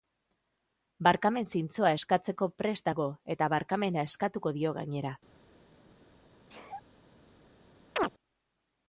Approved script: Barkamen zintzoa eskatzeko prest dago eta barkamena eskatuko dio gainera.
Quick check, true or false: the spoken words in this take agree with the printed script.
true